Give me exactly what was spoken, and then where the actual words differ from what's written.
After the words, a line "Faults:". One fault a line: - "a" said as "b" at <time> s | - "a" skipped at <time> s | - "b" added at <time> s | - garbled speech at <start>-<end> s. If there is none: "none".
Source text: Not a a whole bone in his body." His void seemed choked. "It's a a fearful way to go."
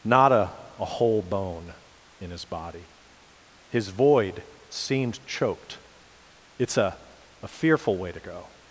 Not a a whole bone in his body." His void seemed choked. "It's a a fearful way to go."
Faults:
none